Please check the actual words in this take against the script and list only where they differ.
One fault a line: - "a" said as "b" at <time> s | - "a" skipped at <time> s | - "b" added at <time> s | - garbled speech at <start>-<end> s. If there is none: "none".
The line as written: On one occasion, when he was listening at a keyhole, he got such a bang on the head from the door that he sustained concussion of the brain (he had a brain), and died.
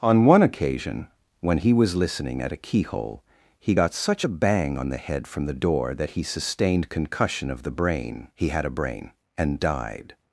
none